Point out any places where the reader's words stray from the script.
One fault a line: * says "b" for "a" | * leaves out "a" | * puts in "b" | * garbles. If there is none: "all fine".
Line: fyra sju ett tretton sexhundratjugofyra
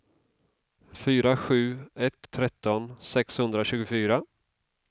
all fine